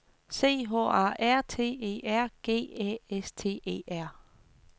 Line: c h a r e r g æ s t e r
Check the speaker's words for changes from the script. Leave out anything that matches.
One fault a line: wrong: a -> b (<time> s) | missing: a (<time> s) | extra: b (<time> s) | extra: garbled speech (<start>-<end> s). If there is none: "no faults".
extra: t (1.4 s)